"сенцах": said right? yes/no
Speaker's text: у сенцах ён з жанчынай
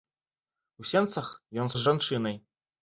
yes